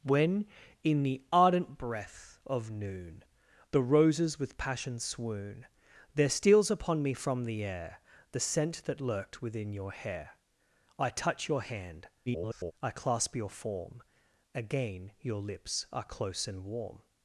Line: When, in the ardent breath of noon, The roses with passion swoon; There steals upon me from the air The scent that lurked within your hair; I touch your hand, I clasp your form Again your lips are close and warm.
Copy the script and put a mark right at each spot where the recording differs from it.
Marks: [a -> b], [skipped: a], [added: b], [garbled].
When, in the ardent breath of noon, The roses with passion swoon; There steals upon me from the air The scent that lurked within your hair; I touch your hand, [garbled] I clasp your form Again your lips are close and warm.